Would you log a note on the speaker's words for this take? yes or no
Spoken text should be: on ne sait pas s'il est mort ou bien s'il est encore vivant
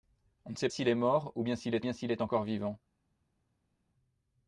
yes